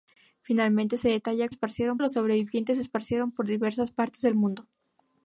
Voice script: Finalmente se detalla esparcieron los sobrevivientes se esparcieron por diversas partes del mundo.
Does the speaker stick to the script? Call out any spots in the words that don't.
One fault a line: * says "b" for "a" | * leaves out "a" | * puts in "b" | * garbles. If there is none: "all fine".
all fine